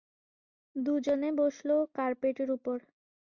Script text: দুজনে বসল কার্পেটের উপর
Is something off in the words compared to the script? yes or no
no